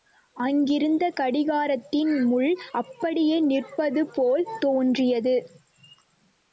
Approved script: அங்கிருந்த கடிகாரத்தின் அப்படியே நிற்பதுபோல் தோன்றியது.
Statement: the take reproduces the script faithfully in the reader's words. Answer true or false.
false